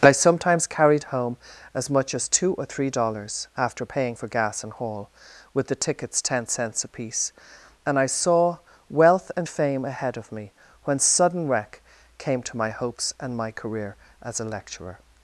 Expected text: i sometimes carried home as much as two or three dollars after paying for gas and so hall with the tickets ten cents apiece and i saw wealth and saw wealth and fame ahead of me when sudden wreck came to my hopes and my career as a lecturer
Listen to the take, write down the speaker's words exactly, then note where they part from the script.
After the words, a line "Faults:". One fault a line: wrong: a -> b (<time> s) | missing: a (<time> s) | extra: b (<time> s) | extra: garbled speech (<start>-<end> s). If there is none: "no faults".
i sometimes carried home as much as two or three dollars after paying for gas and hall with the tickets ten cents apiece and i saw wealth and fame ahead of me when sudden wreck came to my hopes and my career as a lecturer
Faults:
missing: so (4.7 s)
missing: saw wealth and (9.5 s)